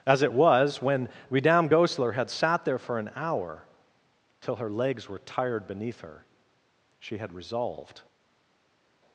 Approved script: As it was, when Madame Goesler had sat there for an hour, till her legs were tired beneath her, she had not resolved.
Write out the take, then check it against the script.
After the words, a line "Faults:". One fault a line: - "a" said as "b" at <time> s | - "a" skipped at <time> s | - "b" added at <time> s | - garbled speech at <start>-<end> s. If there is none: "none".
As it was, when Madame Goesler had sat there for an hour, till her legs were tired beneath her, she had resolved.
Faults:
- "not" skipped at 7.3 s